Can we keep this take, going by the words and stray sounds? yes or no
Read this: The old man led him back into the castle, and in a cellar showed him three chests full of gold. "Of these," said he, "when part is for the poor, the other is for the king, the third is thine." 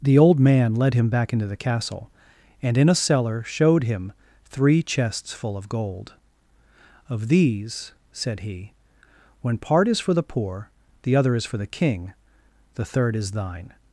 yes